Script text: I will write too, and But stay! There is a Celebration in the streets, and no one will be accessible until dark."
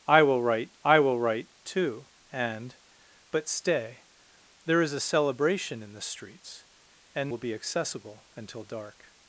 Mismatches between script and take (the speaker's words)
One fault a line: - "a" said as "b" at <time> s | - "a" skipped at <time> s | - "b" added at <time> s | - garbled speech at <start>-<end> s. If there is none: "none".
- "I will write" added at 0.8 s
- "no one" skipped at 7.3 s